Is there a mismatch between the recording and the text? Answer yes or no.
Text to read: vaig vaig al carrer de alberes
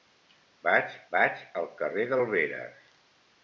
no